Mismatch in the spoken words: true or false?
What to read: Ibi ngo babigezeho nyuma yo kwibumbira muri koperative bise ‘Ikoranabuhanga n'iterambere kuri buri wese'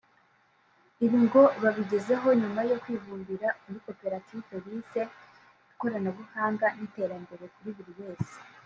false